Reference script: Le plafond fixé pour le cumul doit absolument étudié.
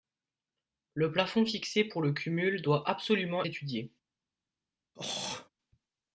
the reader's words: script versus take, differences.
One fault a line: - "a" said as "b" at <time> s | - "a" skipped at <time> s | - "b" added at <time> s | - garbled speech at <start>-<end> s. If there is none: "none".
none